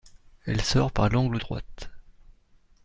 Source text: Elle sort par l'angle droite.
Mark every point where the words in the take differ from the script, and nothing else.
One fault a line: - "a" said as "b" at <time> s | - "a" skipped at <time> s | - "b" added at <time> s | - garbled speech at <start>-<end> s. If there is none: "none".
none